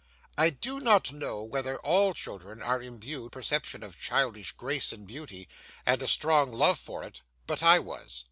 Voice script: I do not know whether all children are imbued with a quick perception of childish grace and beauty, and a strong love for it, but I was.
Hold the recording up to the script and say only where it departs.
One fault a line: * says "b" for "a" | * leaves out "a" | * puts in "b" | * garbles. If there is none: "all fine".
* leaves out "with a quick"